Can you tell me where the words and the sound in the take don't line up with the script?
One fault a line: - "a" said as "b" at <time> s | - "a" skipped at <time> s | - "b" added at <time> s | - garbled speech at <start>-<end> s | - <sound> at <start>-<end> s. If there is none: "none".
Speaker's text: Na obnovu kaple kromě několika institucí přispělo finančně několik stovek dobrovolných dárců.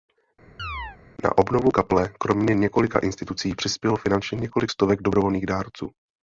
- chirp at 0.6-1.0 s